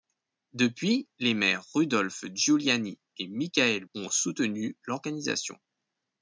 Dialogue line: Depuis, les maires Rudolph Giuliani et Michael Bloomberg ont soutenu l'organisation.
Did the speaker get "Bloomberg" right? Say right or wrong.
wrong